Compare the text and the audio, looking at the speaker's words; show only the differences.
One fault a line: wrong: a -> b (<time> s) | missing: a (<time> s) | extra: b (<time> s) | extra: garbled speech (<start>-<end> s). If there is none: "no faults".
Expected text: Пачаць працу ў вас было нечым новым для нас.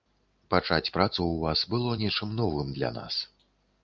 no faults